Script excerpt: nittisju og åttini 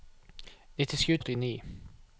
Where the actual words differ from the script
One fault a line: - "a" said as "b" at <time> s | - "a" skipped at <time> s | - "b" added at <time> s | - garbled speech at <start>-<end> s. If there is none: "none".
none